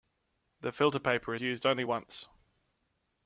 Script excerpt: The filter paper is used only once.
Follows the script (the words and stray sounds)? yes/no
no